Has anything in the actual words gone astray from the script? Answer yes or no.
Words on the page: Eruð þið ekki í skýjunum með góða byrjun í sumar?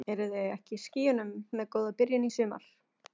no